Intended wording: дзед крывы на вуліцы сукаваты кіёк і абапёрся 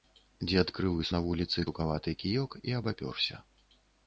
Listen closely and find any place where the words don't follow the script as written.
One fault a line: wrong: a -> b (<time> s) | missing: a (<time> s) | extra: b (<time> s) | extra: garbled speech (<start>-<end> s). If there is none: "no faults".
no faults